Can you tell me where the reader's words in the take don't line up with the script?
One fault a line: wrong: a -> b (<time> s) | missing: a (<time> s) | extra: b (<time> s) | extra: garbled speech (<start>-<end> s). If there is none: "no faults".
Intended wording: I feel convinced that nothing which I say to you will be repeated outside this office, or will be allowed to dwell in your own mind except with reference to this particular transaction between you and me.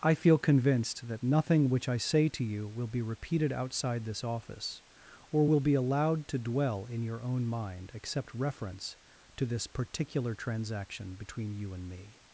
missing: with (8.3 s)